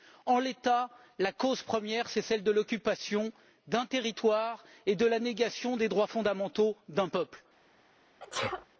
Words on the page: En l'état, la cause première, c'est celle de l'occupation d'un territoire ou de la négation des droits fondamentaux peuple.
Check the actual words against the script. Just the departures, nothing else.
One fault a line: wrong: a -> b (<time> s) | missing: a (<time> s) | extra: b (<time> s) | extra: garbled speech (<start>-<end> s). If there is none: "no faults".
wrong: ou -> et (4.8 s)
extra: d'un (6.9 s)